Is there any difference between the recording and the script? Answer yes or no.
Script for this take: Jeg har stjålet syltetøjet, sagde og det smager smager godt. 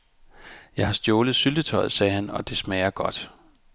yes